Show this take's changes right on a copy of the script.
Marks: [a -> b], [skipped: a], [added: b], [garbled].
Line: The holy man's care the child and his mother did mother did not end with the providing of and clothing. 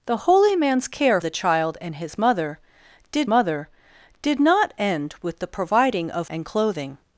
The holy man's care the child and his mother did mother did not end with the providing of and clothing.